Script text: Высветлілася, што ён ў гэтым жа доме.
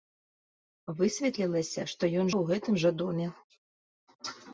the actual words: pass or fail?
pass